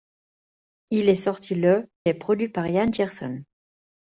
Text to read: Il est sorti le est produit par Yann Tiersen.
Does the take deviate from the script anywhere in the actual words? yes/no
no